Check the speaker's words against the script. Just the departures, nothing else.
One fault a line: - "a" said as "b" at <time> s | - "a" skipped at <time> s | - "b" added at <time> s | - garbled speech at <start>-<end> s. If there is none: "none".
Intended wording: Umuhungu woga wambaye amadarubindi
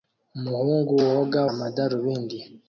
- "wambaye" skipped at 1.4 s